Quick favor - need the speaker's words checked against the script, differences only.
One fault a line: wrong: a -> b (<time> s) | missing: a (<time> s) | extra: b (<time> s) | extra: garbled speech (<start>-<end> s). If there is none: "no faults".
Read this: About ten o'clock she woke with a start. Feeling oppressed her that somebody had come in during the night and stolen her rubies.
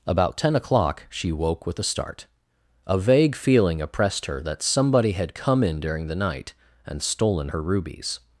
extra: A vague (2.9 s)